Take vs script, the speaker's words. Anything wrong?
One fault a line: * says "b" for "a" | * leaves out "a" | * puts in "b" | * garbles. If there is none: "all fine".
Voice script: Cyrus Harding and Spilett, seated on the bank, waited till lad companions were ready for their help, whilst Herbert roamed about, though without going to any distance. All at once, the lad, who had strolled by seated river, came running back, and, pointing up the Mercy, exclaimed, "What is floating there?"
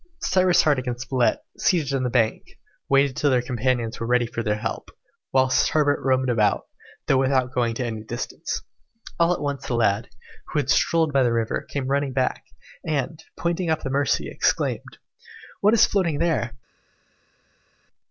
* says "their" for "lad"
* says "the" for "seated"